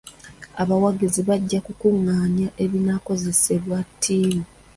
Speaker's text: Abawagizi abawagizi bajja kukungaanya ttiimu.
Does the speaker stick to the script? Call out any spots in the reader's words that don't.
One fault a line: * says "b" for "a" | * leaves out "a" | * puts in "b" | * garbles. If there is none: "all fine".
* leaves out "abawagizi"
* puts in "ebinaakozesebwa"